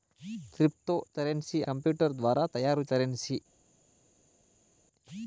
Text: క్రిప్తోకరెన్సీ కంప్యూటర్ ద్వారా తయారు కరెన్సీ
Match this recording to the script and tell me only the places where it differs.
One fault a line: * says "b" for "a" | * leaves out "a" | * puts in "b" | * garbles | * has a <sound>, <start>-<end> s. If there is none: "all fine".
all fine